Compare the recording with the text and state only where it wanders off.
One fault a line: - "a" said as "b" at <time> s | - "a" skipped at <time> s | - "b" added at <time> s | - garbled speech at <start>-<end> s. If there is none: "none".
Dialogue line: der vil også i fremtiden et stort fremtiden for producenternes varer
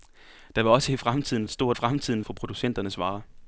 none